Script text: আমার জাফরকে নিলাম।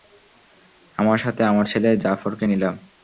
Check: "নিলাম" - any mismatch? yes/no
no